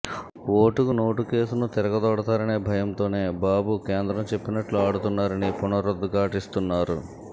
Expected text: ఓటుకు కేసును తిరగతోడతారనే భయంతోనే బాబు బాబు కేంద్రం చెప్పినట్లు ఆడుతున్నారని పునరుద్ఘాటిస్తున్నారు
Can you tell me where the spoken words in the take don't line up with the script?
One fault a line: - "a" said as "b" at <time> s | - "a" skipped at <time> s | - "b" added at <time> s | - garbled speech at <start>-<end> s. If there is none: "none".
- "నోటు" added at 0.9 s
- "బాబు" skipped at 3.8 s